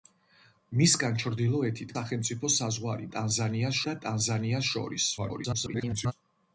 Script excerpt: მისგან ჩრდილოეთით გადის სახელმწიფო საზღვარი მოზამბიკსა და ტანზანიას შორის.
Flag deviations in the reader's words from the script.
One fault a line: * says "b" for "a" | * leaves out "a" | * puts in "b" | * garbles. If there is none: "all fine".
* leaves out "გადის"
* says "ტანზანიას" for "მოზამბიკსა"
* garbles